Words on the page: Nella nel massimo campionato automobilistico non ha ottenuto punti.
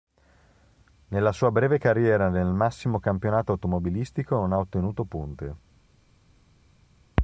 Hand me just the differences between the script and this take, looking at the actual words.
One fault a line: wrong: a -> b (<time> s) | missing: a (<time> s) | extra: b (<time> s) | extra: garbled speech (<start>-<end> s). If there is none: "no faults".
extra: sua breve carriera (1.3 s)